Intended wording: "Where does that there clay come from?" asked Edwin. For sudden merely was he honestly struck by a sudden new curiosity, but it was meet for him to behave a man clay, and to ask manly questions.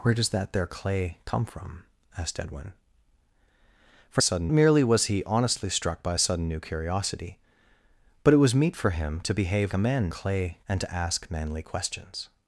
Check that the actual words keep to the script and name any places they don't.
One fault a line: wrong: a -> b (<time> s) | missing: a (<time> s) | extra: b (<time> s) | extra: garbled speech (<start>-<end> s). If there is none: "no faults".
no faults